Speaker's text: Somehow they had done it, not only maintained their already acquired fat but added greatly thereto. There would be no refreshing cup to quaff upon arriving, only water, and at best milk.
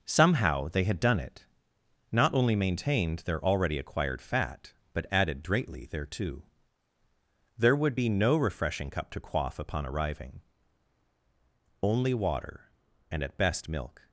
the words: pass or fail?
pass